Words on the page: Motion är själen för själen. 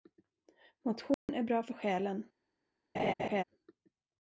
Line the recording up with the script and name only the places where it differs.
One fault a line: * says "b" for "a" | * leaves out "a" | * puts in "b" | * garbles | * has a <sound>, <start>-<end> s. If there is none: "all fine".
* has a dropout, 1.1-1.3 s
* says "bra" for "själen"
* has a laugh, 2.9-3.4 s